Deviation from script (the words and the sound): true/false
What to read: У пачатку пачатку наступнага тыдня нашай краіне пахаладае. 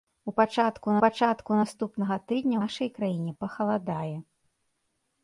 false